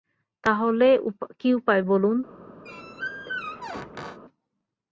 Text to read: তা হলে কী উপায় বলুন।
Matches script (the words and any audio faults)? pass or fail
fail